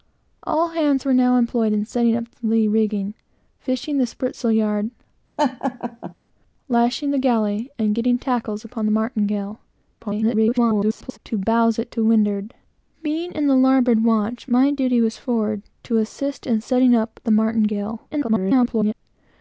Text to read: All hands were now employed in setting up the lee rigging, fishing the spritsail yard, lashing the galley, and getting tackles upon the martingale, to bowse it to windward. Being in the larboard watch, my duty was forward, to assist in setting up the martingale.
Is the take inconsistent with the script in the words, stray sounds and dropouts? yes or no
yes